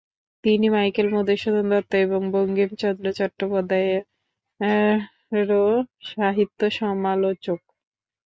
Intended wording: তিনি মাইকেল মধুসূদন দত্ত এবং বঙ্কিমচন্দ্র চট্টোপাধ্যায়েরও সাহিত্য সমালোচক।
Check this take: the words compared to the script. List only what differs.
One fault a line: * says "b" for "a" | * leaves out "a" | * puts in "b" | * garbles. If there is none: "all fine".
all fine